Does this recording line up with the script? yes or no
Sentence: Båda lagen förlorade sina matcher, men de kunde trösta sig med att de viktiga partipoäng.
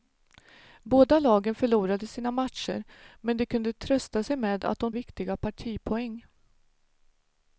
yes